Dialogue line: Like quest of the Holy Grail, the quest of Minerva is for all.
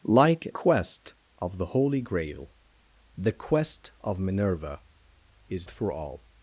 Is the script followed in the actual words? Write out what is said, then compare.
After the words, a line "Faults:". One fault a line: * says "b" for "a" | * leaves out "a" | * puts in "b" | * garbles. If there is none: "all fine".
Like quest of the Holy Grail, the quest of Minerva is for all.
Faults:
all fine